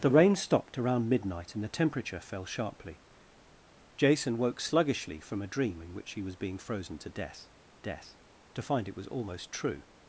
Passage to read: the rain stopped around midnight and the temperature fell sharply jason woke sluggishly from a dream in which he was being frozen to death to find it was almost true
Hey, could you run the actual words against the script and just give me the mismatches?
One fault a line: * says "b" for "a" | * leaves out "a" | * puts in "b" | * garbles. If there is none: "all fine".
* puts in "death"